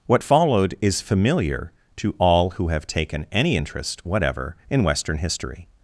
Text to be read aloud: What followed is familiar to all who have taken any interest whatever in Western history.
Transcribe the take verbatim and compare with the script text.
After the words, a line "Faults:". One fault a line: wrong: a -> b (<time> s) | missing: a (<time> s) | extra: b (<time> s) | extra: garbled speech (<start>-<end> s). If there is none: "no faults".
What followed is familiar to all who have taken any interest whatever in Western history.
Faults:
no faults